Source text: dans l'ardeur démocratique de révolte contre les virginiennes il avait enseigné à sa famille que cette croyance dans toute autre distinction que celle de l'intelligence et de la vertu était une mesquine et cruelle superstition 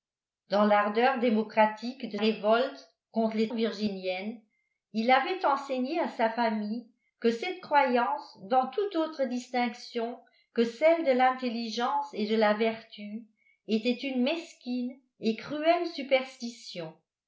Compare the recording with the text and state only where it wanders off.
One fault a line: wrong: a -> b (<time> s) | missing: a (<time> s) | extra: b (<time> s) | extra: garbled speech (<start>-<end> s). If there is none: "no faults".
no faults